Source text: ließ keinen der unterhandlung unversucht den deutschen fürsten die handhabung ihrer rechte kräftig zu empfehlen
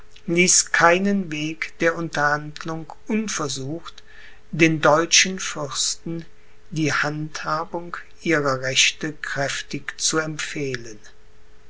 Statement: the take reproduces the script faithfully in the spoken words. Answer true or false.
false